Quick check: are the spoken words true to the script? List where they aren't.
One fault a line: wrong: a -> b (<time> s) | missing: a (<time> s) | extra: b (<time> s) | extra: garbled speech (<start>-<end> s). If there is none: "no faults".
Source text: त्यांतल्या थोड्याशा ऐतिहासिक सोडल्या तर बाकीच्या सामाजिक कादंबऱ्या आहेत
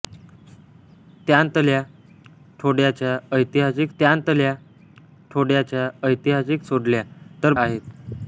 wrong: सोडल्या तर बाकीच्या सामाजिक कादंबऱ्या -> त्यांतल्या थोड्याशा ऐतिहासिक सोडल्या तर (4.0 s)